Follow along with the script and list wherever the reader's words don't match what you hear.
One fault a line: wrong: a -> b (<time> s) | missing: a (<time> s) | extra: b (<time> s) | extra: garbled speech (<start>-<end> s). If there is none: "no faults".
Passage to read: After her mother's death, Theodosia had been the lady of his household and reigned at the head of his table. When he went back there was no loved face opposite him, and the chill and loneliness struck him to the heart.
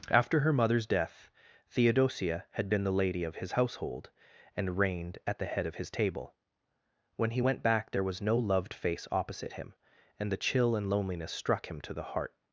no faults